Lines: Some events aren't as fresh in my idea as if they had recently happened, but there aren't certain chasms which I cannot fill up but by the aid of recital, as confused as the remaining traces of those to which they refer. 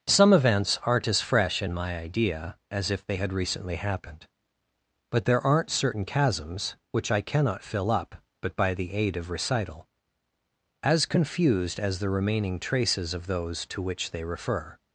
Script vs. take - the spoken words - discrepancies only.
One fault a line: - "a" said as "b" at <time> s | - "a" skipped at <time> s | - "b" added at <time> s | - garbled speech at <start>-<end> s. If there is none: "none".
none